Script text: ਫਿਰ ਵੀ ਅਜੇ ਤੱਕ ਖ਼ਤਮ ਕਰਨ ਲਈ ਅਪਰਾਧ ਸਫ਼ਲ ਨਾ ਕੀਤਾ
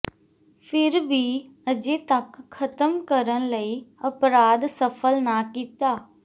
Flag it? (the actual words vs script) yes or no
no